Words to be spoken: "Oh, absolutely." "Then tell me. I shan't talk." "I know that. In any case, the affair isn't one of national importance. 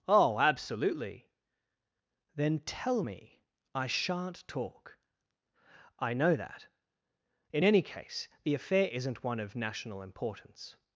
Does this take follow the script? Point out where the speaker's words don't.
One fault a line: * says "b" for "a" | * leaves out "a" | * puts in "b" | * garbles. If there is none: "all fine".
all fine